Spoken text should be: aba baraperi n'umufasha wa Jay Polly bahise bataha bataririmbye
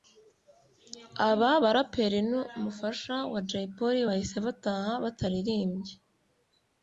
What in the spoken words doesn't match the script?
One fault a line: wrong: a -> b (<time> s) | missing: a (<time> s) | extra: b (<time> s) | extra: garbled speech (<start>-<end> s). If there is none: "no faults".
no faults